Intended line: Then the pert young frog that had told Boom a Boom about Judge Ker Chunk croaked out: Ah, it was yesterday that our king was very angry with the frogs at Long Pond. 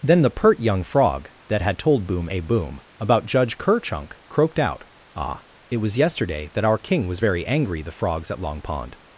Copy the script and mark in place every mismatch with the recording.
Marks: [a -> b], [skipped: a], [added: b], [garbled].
Then the pert young frog that had told Boom a Boom about Judge Ker Chunk croaked out: Ah, it was yesterday that our king was very angry [skipped: with] the frogs at Long Pond.